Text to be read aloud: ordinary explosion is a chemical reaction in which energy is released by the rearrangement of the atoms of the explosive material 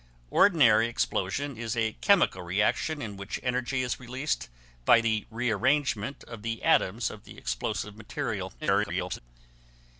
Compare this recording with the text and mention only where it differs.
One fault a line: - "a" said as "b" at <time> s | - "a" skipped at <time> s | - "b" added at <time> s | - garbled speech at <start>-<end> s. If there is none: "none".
- garbled speech at 8.6-9.2 s